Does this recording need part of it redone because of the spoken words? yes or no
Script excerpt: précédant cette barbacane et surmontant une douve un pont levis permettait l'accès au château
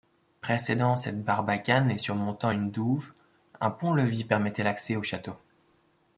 no